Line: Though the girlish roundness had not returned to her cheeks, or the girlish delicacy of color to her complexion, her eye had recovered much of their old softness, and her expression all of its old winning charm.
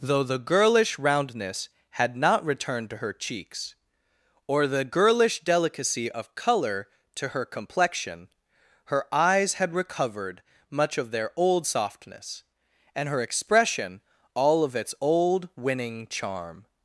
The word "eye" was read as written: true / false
false